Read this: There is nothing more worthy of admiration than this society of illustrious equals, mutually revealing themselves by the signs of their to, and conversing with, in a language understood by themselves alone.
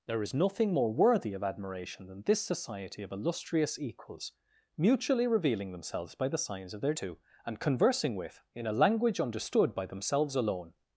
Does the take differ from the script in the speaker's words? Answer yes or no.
no